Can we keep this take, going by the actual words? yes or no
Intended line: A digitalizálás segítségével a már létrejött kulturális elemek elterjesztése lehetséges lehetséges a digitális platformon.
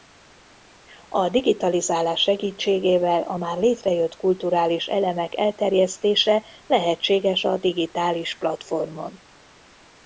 no